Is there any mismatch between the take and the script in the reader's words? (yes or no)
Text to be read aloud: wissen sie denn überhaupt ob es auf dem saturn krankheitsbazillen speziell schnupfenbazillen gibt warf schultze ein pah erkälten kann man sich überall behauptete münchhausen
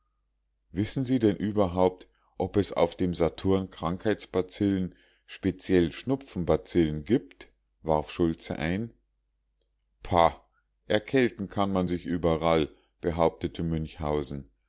no